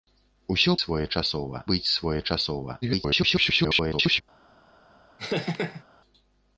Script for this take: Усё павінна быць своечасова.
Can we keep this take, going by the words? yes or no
no